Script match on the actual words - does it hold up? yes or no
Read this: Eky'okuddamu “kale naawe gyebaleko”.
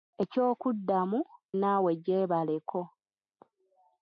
no